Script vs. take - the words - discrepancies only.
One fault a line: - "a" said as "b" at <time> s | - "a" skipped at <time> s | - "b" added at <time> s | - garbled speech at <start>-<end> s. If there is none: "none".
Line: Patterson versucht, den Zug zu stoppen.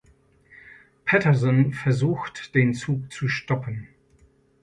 none